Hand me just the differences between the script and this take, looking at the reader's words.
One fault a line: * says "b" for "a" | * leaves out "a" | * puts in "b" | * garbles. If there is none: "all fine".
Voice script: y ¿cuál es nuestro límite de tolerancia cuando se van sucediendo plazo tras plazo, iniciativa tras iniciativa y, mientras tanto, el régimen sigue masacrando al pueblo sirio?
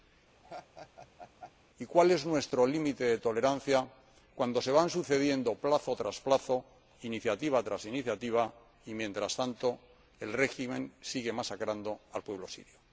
all fine